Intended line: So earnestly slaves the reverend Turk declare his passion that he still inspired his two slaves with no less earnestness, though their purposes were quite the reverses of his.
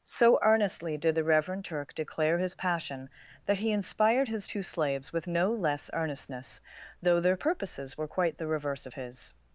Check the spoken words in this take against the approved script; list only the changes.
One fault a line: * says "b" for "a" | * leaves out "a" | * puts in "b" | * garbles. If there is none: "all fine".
* says "did" for "slaves"
* leaves out "still"
* says "reverse" for "reverses"